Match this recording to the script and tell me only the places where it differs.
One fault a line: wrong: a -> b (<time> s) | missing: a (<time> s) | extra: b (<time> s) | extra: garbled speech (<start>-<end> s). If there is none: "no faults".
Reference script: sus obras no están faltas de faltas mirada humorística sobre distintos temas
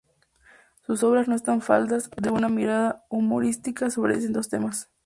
wrong: faltas -> una (2.3 s)